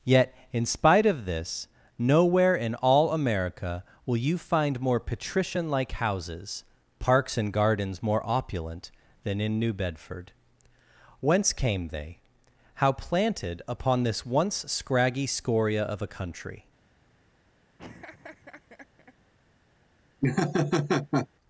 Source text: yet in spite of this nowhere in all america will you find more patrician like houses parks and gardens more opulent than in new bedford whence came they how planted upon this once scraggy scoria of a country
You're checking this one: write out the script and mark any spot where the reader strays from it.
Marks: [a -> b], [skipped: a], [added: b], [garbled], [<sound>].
yet in spite of this nowhere in all america will you find more patrician like houses parks and gardens more opulent than in new bedford whence came they how planted upon this once scraggy scoria of a country [laugh] [laugh]